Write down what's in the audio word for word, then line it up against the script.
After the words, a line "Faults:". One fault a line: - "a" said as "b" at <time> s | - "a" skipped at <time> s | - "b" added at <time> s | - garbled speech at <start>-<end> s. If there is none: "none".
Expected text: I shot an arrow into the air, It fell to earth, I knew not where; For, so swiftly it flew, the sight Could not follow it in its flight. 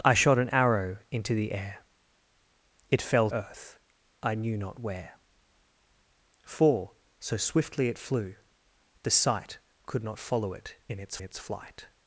I shot an arrow into the air, It fell earth, I knew not where; For, so swiftly it flew, the sight Could not follow it in its its flight.
Faults:
- "to" skipped at 3.3 s
- "its" added at 11.2 s